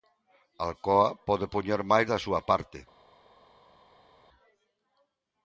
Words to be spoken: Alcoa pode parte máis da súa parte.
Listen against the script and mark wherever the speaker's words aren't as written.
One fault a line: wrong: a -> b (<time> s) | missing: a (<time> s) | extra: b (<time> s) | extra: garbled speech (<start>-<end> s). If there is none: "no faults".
wrong: parte -> poñer (1.5 s)